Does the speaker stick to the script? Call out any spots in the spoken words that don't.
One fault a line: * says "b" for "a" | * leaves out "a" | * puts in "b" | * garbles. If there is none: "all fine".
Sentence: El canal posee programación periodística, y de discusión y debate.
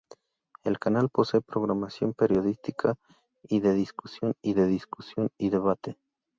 * puts in "de discusión y"